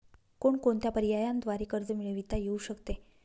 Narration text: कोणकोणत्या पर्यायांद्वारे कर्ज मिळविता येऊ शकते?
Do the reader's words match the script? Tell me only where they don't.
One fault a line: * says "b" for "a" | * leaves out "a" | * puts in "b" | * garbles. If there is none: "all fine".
all fine